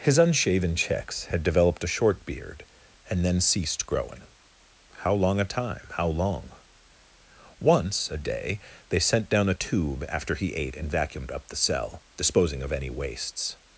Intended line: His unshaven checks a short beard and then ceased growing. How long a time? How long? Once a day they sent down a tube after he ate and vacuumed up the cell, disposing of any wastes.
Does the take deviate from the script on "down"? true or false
false